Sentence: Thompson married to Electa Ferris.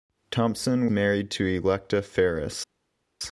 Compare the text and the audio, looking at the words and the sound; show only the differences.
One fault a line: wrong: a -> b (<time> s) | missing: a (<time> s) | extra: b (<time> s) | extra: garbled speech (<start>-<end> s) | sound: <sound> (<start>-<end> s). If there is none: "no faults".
no faults